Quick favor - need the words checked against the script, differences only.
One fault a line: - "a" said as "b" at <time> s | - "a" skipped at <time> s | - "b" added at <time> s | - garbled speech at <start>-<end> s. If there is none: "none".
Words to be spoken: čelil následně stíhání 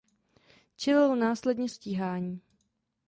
none